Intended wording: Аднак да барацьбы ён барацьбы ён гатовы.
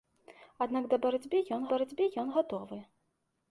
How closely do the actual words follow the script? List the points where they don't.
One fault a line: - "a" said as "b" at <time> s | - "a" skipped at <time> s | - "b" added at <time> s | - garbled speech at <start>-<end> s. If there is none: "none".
none